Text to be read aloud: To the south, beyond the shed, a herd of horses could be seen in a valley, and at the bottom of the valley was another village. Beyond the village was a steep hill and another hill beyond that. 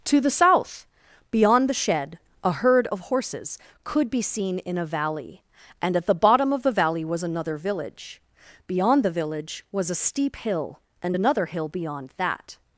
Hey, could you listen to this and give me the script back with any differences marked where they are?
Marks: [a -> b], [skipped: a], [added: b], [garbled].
To the south, beyond the shed, a herd of horses could be seen in a valley, and at the bottom of the valley was another village. Beyond the village was a steep hill and another hill beyond that.